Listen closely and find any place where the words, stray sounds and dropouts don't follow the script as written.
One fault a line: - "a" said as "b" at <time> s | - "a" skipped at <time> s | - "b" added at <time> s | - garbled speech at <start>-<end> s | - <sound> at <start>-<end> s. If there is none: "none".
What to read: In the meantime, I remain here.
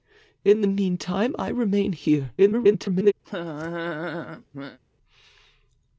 - garbled speech at 2.4-3.1 s
- laugh at 3.2-4.8 s